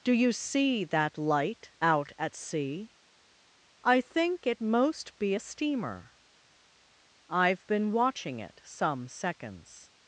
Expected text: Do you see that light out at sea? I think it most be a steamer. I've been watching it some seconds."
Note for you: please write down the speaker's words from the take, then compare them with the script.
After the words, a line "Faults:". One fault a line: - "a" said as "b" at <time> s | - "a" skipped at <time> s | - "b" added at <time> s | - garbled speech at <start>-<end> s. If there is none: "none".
Do you see that light out at sea? I think it most be a steamer. I've been watching it some seconds."
Faults:
none